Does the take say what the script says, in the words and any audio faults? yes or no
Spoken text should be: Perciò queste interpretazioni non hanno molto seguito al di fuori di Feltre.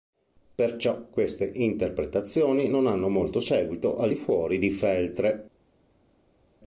yes